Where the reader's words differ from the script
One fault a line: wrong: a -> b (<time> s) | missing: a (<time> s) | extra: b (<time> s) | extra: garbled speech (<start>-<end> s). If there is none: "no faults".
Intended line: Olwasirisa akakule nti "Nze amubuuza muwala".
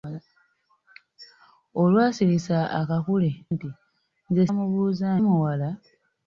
no faults